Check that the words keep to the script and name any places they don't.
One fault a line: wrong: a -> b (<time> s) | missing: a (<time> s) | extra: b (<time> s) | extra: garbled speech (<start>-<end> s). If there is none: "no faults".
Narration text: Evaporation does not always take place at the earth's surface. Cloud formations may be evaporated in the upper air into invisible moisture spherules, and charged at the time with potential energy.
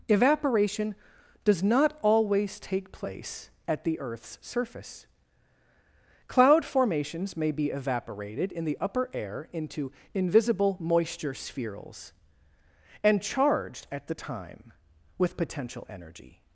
no faults